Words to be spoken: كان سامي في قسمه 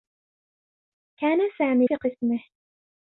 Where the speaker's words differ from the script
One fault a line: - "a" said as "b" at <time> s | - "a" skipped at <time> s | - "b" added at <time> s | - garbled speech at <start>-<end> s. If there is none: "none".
none